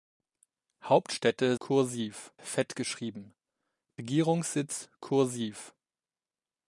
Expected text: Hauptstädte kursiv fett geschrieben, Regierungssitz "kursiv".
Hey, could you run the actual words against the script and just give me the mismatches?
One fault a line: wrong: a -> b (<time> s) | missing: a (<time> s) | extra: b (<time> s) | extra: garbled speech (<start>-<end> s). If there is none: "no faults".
no faults